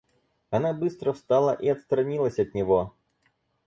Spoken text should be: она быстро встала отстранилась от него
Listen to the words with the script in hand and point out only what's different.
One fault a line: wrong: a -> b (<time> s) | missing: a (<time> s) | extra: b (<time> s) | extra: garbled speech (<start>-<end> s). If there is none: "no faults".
extra: и (1.5 s)